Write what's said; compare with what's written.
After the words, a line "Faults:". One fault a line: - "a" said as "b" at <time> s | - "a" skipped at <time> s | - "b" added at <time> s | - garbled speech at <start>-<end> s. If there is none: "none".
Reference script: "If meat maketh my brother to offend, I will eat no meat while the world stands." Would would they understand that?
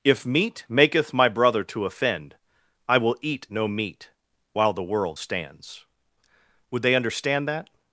"If meat maketh my brother to offend, I will eat no meat while the world stands." Would they understand that?
Faults:
- "would" skipped at 6.8 s